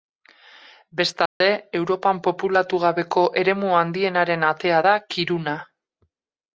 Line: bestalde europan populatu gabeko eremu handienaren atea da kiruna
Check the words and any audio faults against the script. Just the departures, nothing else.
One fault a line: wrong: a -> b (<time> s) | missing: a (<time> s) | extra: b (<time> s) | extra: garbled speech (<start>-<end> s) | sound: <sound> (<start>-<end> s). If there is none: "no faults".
sound: dropout (1.3-1.4 s)